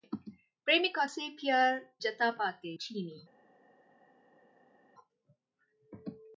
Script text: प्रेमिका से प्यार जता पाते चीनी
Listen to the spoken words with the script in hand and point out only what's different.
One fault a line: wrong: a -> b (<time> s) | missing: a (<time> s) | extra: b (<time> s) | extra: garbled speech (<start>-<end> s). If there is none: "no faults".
no faults